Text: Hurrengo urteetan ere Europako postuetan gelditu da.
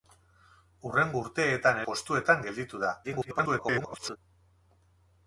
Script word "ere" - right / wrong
wrong